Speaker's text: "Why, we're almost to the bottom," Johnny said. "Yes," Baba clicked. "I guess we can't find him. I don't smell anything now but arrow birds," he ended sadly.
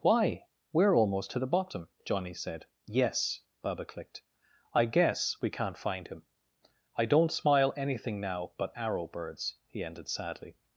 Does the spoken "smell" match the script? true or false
false